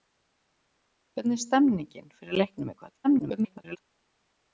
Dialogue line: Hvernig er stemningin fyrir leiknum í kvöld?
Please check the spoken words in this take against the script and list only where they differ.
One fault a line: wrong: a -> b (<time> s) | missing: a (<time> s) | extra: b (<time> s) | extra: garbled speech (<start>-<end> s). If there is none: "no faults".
extra: garbled speech (3.0-3.8 s)